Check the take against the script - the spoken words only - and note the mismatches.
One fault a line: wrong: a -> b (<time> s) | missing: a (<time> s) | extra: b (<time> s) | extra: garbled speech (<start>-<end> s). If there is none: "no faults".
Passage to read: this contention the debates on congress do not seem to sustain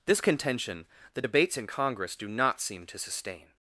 wrong: on -> in (1.6 s)